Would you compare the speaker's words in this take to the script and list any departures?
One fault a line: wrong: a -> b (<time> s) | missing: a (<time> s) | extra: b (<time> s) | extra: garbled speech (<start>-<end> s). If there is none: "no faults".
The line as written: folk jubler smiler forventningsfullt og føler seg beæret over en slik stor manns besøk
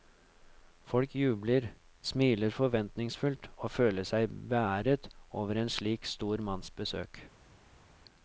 no faults